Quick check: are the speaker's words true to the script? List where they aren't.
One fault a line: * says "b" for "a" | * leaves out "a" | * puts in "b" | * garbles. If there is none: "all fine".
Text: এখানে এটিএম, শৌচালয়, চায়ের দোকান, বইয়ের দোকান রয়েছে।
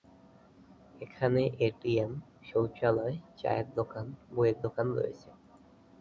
all fine